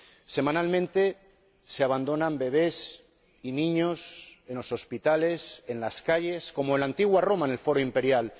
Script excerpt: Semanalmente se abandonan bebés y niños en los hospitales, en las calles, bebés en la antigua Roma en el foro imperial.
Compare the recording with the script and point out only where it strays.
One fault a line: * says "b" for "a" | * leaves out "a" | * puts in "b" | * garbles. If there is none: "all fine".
* says "como" for "bebés"